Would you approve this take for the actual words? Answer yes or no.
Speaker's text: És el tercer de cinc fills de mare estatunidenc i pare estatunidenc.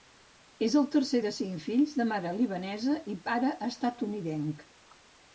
no